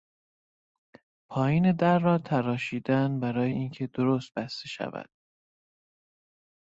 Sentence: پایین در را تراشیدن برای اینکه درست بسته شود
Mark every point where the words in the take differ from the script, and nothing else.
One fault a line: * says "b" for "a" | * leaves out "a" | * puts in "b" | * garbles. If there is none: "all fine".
all fine